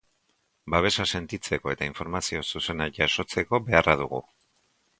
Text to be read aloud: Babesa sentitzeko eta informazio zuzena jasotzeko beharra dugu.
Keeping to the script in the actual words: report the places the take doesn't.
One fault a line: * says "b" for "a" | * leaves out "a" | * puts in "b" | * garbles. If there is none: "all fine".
all fine